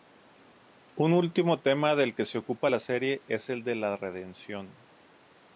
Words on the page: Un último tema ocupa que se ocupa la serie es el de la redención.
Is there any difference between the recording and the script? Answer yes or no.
yes